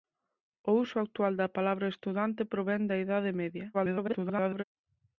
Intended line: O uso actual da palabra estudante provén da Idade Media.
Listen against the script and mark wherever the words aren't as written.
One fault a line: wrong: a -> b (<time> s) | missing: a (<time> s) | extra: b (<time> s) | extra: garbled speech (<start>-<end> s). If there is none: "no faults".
extra: garbled speech (3.7-4.6 s)